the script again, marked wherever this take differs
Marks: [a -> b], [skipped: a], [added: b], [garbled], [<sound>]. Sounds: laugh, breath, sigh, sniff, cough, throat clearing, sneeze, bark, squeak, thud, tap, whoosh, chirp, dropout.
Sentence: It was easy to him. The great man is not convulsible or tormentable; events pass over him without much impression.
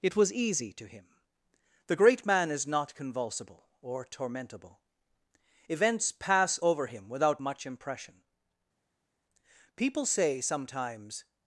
It was easy to him. The great man is not convulsible or tormentable; events pass over him without much impression. [added: People say sometimes]